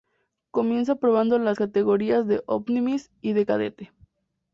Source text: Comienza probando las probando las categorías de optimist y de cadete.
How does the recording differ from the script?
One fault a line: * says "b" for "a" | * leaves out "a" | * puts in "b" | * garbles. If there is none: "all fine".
* leaves out "probando las"